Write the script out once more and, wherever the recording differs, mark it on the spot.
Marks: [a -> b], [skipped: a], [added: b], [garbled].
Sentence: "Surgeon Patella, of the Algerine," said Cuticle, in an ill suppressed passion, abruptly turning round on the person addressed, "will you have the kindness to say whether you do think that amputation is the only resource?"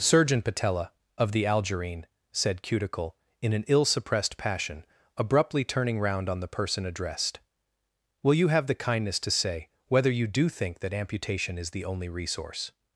"Surgeon Patella, of the Algerine," said Cuticle, in an ill suppressed passion, abruptly turning round on the person addressed, "will you have the kindness to say whether you do think that amputation is the only resource?"